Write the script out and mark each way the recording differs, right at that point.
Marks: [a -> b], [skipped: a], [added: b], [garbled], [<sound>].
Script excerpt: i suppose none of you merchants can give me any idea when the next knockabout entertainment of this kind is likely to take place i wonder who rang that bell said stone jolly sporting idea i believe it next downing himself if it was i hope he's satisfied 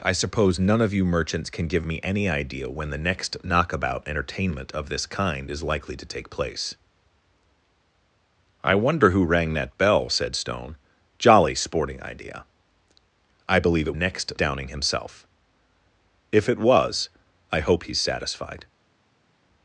i suppose none of you merchants can give me any idea when the next knockabout entertainment of this kind is likely to take place i wonder who rang that bell said stone jolly sporting idea i believe it next downing himself if it was i hope he's satisfied